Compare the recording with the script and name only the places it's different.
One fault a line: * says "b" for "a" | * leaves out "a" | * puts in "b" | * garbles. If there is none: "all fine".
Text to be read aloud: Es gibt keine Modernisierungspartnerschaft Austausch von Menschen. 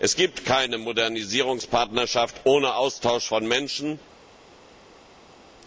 * puts in "ohne"